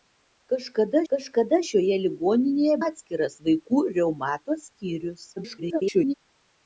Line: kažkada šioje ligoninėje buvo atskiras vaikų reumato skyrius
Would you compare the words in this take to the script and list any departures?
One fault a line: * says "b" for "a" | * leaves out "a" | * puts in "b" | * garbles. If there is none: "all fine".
* puts in "kažkada"
* leaves out "buvo"
* garbles